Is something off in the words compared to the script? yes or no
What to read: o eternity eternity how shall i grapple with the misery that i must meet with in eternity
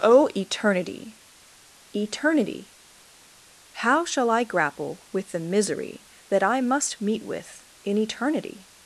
no